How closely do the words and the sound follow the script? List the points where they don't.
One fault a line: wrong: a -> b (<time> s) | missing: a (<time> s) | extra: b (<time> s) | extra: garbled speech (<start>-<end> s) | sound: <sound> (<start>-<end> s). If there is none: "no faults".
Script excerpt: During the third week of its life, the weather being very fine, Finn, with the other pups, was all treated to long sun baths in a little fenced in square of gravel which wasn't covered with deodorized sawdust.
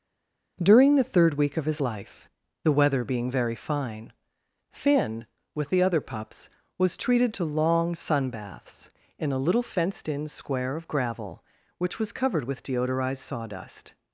wrong: its -> his (1.7 s)
missing: all (7.0 s)
wrong: wasn't -> was (12.0 s)